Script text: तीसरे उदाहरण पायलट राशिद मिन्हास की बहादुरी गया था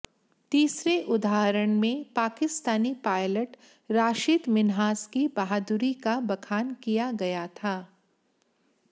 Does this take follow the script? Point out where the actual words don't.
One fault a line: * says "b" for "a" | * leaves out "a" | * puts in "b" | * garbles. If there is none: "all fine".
* puts in "में पाकिस्तानी"
* puts in "का बखान किया"